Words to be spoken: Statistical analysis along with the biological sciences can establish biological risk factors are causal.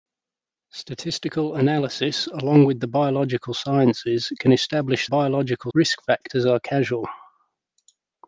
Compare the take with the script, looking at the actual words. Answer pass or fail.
pass